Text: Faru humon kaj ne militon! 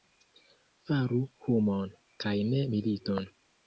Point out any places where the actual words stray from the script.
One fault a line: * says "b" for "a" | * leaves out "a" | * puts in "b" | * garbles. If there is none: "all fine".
all fine